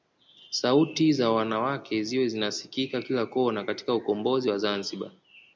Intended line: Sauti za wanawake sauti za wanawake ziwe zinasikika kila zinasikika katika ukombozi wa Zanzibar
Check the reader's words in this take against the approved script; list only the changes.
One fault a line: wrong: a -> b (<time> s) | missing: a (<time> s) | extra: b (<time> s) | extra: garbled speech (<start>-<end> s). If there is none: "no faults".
missing: sauti za wanawake (2.0 s)
wrong: zinasikika -> kona (3.2 s)